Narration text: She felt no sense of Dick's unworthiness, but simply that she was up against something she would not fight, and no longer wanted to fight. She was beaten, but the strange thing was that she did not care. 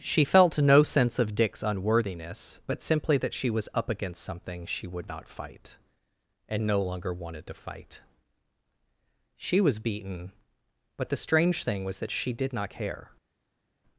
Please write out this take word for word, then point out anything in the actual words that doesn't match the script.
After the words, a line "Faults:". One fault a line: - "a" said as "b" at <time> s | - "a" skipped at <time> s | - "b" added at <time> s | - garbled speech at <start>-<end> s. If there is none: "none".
She felt no sense of Dick's unworthiness, but simply that she was up against something she would not fight, and no longer wanted to fight. She was beaten, but the strange thing was that she did not care.
Faults:
none